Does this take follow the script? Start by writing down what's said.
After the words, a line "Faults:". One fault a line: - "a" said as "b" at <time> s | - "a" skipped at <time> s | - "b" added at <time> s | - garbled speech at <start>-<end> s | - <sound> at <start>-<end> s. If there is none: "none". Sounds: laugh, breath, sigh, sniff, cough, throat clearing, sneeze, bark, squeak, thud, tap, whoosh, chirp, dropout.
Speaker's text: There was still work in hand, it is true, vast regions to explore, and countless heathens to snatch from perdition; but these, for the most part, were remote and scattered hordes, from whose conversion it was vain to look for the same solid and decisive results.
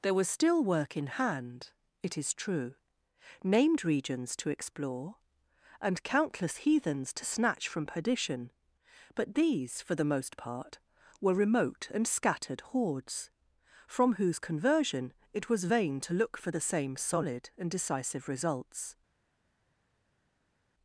There was still work in hand, it is true, named regions to explore, and countless heathens to snatch from perdition; but these, for the most part, were remote and scattered hordes, from whose conversion it was vain to look for the same solid and decisive results.
Faults:
- "vast" said as "named" at 3.4 s